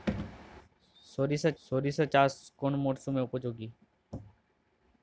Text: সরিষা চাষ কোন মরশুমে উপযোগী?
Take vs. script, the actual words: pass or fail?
fail